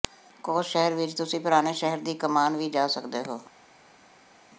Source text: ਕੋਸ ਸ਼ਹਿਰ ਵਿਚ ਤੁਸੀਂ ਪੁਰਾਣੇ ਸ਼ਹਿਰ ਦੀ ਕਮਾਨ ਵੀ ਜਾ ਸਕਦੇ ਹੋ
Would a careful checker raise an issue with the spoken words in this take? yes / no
no